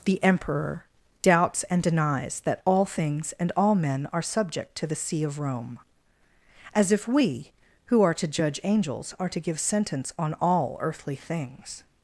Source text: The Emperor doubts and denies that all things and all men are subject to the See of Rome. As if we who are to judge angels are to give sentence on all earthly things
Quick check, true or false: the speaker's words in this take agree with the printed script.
true